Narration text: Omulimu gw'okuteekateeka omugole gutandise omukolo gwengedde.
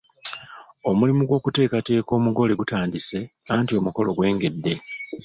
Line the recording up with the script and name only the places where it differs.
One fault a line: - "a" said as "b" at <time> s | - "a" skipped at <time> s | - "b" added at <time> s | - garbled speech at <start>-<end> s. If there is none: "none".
- "anti" added at 3.5 s